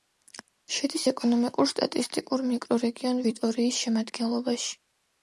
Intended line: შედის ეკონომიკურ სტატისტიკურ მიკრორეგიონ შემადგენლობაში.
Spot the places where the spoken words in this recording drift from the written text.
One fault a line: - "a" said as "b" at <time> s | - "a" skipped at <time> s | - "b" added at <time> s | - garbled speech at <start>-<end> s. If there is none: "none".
- "ვიტორიის" added at 3.3 s